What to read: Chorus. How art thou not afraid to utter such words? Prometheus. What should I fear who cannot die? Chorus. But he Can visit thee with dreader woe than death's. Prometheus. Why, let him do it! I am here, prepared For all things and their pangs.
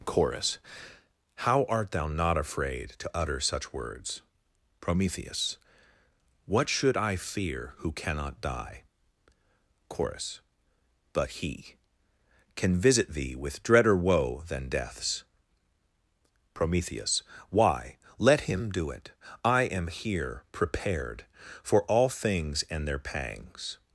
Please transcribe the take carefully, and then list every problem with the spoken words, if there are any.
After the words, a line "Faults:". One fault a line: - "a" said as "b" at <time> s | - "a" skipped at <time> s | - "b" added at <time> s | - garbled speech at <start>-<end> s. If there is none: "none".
Chorus. How art thou not afraid to utter such words? Prometheus. What should I fear who cannot die? Chorus. But he Can visit thee with dreader woe than death's. Prometheus. Why, let him do it! I am here, prepared For all things and their pangs.
Faults:
none